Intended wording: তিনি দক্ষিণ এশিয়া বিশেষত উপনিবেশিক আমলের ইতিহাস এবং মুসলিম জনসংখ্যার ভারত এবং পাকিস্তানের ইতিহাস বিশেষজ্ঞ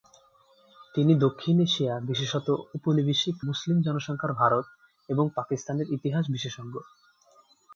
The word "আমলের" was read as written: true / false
false